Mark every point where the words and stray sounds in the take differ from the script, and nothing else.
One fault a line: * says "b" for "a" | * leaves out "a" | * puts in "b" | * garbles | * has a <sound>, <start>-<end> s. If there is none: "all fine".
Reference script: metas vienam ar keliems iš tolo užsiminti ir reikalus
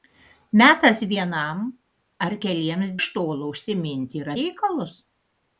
all fine